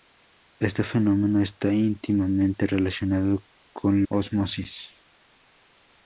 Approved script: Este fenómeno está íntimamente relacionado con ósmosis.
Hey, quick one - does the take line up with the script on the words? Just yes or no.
yes